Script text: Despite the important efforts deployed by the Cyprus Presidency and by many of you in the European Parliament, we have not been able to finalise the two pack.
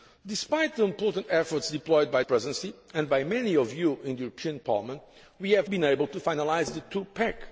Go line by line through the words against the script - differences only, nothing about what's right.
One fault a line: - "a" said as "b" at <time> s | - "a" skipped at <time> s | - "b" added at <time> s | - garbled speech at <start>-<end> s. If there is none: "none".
- "the Cyprus" skipped at 2.2 s
- "not" skipped at 5.7 s